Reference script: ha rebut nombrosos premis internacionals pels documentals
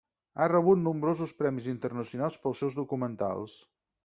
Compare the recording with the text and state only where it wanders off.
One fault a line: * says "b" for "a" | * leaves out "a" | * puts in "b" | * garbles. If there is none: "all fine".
* puts in "seus"